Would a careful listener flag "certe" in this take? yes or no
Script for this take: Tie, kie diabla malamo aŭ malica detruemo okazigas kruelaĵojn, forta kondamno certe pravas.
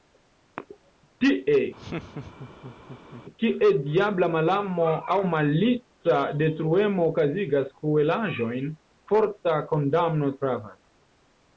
yes